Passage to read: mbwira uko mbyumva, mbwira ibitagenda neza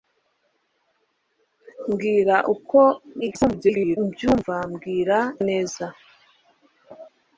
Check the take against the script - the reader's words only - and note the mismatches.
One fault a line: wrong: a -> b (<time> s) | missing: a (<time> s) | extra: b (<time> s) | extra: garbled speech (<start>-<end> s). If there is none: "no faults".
extra: garbled speech (3.2-4.0 s)
missing: ibitagenda (5.2 s)